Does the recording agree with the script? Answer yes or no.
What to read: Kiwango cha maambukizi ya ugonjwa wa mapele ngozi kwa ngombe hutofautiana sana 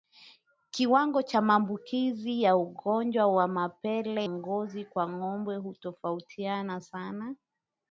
yes